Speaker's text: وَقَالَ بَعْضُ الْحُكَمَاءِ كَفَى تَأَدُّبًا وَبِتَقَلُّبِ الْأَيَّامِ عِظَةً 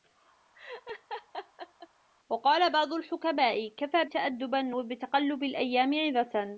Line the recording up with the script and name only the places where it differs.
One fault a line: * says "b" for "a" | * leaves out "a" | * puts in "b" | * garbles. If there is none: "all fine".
all fine